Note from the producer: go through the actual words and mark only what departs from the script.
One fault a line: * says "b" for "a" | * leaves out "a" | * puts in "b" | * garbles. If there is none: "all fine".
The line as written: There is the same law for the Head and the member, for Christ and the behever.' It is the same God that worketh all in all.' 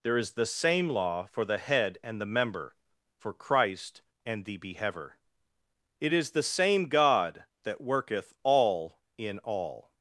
all fine